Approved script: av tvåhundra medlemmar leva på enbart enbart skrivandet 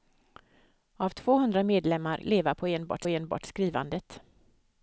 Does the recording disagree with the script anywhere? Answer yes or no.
no